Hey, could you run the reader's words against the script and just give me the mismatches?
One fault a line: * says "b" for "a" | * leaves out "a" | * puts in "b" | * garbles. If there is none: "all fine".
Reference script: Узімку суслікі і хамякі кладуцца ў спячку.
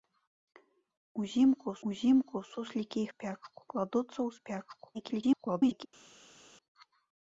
* puts in "узімку"
* says "спячку" for "хамякі"
* garbles